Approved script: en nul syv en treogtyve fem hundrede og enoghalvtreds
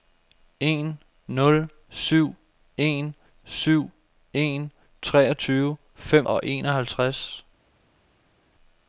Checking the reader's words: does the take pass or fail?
fail